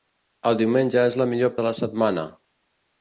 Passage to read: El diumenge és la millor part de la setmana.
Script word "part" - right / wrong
wrong